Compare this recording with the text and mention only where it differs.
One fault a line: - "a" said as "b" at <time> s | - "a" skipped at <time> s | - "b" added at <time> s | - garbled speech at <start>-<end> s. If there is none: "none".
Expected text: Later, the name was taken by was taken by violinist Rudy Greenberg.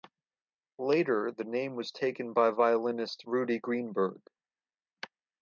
- "was taken by" skipped at 2.5 s